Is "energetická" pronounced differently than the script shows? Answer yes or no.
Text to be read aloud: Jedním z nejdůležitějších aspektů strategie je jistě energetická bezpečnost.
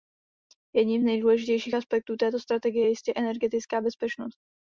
no